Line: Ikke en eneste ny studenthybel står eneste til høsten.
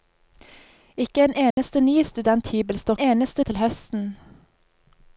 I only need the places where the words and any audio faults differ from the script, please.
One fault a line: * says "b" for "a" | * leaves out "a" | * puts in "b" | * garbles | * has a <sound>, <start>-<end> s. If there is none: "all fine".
* has a dropout, 1.5-1.6 s